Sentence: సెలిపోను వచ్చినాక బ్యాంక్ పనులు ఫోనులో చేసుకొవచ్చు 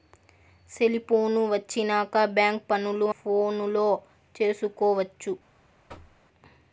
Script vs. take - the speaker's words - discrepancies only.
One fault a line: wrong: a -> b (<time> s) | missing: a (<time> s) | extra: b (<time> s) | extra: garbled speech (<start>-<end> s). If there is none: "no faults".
no faults